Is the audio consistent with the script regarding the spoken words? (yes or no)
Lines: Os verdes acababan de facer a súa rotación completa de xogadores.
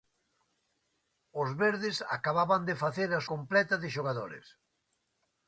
no